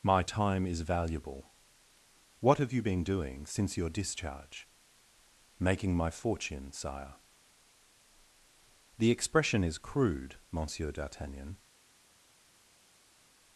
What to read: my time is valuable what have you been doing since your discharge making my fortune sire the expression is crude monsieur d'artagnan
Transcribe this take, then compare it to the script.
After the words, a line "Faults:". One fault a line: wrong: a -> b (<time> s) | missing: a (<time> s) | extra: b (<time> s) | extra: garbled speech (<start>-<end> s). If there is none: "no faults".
my time is valuable what have you been doing since your discharge making my fortune sire the expression is crude monsieur d'artagnan
Faults:
no faults